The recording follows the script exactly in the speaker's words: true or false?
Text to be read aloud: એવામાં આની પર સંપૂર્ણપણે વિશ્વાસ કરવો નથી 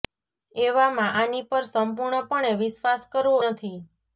true